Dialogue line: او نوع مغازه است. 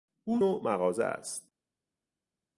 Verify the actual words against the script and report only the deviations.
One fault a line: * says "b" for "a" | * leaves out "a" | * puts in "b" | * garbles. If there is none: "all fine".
all fine